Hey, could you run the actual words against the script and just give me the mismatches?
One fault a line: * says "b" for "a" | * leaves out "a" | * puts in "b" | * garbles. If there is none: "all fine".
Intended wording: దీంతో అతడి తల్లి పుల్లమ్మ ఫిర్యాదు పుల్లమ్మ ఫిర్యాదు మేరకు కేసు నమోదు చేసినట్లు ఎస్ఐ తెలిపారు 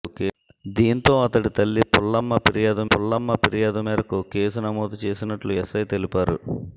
all fine